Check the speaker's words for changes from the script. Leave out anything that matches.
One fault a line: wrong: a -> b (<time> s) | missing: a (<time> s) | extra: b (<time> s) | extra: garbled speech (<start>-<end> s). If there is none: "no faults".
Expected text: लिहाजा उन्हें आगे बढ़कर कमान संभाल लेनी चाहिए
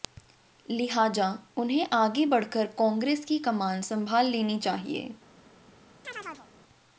extra: कांग्रेस की (2.8 s)